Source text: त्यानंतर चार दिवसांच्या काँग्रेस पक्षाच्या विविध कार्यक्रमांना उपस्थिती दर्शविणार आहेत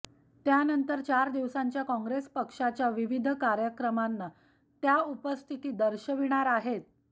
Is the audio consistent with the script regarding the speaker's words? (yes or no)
no